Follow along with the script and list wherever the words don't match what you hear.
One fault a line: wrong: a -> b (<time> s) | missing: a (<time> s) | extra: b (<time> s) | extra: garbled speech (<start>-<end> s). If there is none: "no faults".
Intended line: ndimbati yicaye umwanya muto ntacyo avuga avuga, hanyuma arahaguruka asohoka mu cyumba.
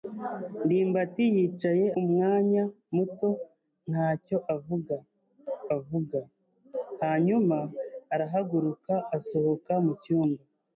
no faults